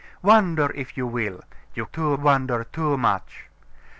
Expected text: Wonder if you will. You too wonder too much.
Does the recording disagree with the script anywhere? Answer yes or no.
no